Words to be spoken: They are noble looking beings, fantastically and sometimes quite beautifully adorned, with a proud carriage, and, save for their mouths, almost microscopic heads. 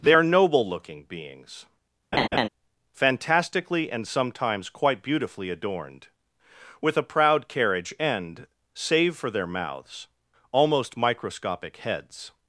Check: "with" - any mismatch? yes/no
no